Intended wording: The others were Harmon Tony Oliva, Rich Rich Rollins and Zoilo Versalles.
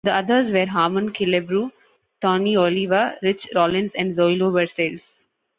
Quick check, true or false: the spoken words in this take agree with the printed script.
false